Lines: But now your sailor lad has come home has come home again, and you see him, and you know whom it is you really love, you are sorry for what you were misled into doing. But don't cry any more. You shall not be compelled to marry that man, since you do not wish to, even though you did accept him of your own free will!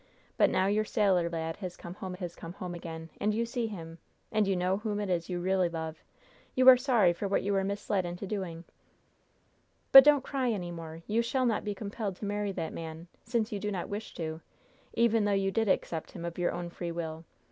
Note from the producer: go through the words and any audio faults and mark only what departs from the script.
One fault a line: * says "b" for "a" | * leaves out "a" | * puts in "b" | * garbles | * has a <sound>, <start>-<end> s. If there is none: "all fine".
all fine